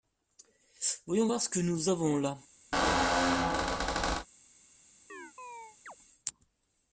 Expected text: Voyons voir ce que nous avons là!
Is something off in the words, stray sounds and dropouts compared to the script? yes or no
yes